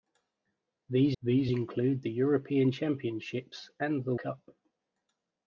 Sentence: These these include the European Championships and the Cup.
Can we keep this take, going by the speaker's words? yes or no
yes